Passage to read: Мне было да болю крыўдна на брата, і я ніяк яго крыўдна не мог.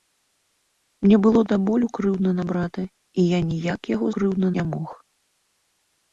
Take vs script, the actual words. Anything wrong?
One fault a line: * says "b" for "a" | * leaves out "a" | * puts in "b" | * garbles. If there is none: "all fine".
all fine